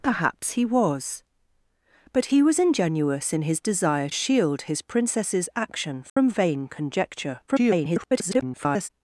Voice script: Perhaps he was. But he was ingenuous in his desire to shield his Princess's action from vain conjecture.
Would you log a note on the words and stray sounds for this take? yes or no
yes